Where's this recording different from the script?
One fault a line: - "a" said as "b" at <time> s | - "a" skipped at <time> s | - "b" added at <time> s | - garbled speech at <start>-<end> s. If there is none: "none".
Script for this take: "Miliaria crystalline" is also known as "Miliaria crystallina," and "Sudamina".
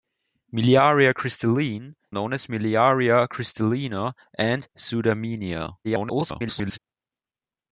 - "is also" skipped at 1.9 s
- garbled speech at 5.8-6.8 s